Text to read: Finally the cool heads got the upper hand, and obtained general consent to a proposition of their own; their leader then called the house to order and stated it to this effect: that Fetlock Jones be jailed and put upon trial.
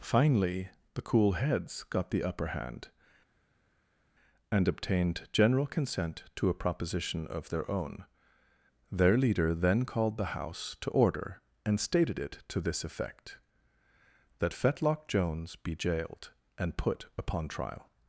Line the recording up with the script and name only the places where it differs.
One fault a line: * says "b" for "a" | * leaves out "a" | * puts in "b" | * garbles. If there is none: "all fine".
all fine